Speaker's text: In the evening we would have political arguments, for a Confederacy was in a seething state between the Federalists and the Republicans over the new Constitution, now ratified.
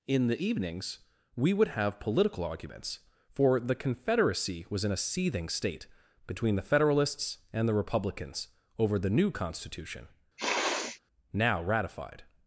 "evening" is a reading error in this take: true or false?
true